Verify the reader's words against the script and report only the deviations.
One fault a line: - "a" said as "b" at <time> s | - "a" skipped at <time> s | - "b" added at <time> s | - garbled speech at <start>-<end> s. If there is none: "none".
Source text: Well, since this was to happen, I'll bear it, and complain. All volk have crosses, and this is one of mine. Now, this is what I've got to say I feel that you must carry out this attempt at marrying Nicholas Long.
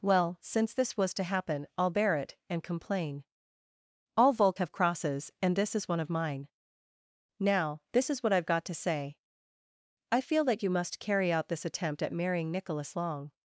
none